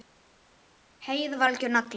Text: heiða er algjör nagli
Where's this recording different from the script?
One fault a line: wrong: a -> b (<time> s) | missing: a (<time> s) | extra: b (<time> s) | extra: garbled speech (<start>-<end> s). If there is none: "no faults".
wrong: er -> var (1.4 s)